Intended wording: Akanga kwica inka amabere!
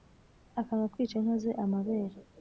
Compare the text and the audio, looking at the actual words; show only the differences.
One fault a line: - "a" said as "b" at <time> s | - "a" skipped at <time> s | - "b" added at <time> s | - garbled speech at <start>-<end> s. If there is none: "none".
- "ze" added at 1.4 s